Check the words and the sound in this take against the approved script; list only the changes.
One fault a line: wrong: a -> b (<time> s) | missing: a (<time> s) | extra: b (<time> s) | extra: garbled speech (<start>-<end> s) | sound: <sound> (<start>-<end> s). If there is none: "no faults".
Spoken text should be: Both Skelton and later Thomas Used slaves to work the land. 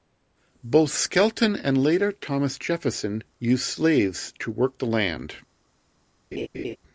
extra: Jefferson (2.6 s)
sound: laugh (6.3-6.8 s)